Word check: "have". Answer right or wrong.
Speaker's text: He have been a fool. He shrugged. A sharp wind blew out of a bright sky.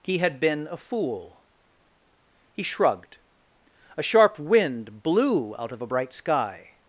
wrong